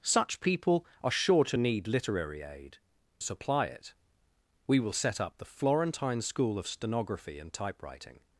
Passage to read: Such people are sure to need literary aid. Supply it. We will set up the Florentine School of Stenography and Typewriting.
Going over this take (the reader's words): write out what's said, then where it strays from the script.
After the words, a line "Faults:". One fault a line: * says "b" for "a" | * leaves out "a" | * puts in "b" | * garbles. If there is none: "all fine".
Such people are sure to need literary aid. Supply it. We will set up the Florentine School of Stenography and Typewriting.
Faults:
all fine